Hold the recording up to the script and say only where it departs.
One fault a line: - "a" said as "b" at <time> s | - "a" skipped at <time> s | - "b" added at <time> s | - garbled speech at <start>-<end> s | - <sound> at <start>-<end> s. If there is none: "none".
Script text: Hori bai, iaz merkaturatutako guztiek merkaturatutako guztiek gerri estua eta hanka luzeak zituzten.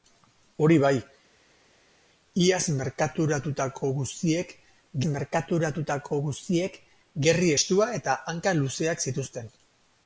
none